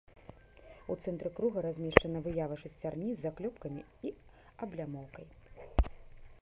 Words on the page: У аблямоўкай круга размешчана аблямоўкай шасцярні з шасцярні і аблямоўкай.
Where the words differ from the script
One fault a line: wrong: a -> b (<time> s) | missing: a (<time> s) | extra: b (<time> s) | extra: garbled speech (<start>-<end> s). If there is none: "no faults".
wrong: аблямоўкай -> цэнтры (1.0 s)
wrong: аблямоўкай -> выява (2.3 s)
wrong: шасцярні -> заклёпкамі (3.3 s)